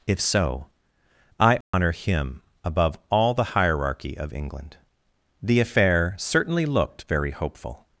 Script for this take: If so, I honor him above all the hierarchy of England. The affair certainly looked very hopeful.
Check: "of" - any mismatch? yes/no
no